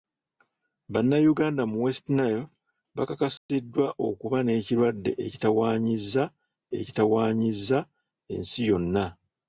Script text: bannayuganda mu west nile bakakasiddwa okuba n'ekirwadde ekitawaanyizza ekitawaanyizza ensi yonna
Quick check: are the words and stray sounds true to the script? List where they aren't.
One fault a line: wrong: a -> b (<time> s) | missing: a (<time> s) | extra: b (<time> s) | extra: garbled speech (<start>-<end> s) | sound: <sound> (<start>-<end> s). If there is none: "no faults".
sound: dropout (3.4-3.5 s)